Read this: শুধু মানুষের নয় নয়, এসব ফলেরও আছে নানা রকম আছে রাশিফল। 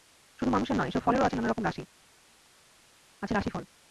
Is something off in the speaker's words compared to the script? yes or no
yes